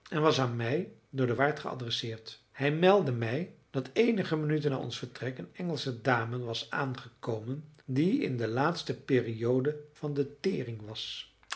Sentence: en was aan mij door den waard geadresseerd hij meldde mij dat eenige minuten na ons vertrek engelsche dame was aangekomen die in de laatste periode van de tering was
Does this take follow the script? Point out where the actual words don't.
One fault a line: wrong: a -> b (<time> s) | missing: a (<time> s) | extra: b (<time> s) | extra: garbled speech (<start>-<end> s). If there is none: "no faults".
extra: een (5.4 s)